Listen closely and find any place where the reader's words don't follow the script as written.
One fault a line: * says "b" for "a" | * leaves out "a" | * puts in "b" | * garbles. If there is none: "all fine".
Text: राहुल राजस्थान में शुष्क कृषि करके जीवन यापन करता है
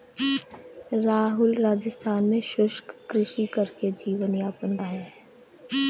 * leaves out "करता"